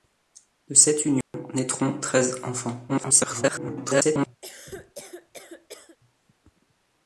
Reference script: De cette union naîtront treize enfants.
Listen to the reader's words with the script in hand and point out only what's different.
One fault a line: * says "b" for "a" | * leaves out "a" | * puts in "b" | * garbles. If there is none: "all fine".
* garbles